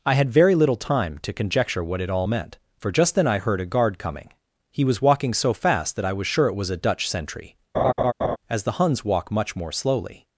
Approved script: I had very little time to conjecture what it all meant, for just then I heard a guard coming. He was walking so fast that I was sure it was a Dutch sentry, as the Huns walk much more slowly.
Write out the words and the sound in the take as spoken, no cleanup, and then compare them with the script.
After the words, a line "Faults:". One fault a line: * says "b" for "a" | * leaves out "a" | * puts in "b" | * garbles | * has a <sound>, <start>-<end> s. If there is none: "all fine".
I had very little time to conjecture what it all meant, for just then I heard a guard coming. He was walking so fast that I was sure it was a Dutch sentry, as the Huns walk much more slowly.
Faults:
* has a laugh, 7.7-8.4 s